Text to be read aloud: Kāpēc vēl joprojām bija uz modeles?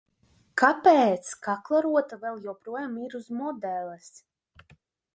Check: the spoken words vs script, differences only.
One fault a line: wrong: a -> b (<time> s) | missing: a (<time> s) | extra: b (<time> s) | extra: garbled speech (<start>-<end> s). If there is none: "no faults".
extra: kaklarota (1.5 s)
wrong: bija -> ir (3.0 s)